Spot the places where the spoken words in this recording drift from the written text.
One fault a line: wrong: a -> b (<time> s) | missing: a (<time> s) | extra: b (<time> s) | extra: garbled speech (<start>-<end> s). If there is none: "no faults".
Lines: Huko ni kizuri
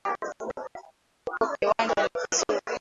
extra: kiwanja (1.6 s)